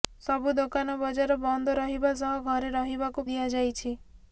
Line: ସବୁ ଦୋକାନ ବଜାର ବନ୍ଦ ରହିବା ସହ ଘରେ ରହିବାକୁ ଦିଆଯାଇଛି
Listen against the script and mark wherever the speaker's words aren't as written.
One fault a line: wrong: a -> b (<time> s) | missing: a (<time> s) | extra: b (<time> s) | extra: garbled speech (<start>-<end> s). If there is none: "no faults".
no faults